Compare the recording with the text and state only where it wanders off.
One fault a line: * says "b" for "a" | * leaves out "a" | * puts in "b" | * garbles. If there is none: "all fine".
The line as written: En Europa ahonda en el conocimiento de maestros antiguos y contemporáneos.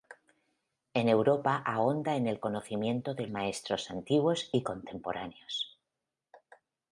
all fine